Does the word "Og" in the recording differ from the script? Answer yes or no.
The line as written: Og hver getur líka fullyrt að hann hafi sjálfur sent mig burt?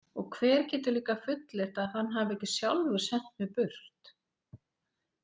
no